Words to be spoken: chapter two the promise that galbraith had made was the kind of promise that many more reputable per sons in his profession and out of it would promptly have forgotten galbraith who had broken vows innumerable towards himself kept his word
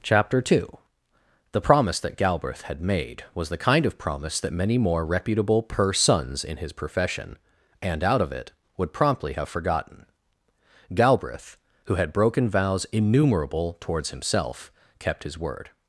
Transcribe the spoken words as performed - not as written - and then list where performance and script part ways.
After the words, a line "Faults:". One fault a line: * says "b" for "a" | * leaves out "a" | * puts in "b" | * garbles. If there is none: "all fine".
chapter two the promise that galbraith had made was the kind of promise that many more reputable per sons in his profession and out of it would promptly have forgotten galbraith who had broken vows innumerable towards himself kept his word
Faults:
all fine